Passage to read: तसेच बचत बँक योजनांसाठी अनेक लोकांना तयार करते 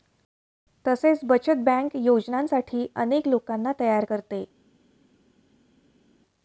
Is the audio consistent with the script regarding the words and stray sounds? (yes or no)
yes